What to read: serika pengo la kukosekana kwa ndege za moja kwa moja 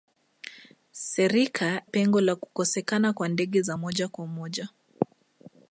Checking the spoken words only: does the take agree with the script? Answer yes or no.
yes